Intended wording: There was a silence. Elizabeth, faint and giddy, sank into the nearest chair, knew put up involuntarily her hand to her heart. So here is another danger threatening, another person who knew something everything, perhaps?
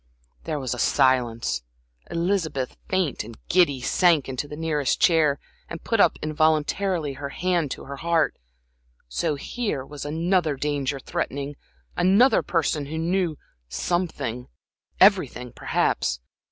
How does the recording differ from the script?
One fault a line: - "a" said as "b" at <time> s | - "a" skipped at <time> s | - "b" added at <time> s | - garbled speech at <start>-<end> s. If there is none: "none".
- "knew" said as "and" at 5.7 s
- "is" said as "was" at 9.8 s